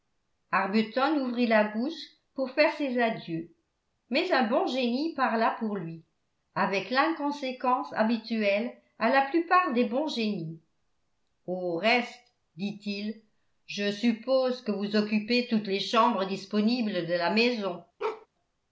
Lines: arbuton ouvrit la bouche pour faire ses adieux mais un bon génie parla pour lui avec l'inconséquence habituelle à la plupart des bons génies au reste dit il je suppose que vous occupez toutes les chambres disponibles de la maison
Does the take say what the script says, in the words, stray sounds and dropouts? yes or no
no